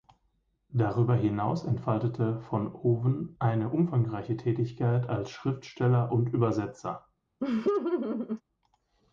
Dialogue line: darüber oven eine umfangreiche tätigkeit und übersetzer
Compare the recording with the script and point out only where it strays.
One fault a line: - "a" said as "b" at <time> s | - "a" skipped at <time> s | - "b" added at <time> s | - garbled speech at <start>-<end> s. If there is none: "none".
- "hinaus entfaltete von" added at 1.1 s
- "als schriftsteller" added at 5.1 s